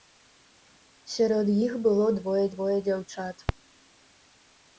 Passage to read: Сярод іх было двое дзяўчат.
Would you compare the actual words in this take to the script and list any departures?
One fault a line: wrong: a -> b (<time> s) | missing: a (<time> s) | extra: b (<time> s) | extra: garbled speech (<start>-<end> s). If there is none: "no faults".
extra: двое (2.5 s)